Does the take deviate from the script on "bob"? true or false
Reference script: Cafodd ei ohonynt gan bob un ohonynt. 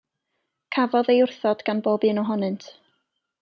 false